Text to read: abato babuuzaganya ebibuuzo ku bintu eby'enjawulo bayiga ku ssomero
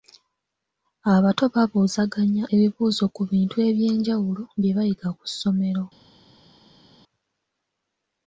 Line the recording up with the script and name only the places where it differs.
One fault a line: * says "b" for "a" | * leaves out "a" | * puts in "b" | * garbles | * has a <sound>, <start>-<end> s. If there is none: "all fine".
* puts in "bye"